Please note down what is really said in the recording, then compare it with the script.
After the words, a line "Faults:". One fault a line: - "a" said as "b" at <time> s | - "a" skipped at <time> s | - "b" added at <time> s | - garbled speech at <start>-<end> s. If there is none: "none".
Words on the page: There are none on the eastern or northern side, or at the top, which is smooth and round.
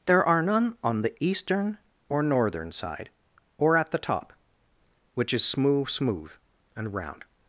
There are none on the eastern or northern side, or at the top, which is smooth smooth and round.
Faults:
- "smooth" added at 5.9 s